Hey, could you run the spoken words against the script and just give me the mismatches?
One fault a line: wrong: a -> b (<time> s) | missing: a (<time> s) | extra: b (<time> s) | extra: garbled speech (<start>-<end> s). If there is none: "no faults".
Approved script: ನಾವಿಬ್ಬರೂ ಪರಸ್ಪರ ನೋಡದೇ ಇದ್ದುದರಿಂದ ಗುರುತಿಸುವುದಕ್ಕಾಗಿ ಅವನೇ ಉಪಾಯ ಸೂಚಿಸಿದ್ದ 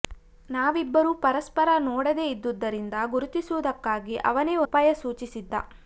no faults